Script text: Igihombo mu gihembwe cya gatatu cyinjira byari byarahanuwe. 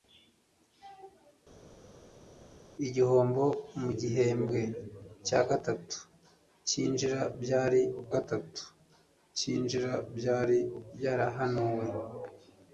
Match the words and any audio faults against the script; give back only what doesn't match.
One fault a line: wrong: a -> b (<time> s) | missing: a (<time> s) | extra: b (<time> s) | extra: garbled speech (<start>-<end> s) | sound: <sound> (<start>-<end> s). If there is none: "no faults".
extra: gatatu cyinjira byari (8.1 s)